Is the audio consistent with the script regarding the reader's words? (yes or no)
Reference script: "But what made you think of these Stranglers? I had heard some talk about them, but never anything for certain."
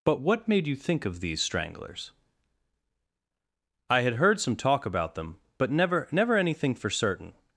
no